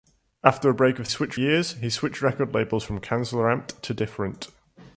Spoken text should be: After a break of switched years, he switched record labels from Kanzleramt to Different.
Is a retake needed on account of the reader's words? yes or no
no